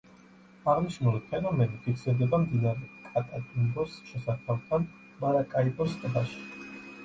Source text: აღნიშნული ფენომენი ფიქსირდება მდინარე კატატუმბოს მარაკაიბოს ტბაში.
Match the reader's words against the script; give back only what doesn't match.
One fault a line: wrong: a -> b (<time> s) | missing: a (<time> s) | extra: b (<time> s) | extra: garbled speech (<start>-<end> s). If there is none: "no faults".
extra: შესართავთან (4.1 s)